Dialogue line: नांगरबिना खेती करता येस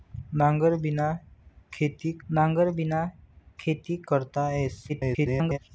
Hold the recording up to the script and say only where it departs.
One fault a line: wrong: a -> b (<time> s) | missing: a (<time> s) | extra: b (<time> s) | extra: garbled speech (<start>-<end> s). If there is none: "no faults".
extra: नांगरबिना खेती (2.3 s)
extra: garbled speech (4.9-5.6 s)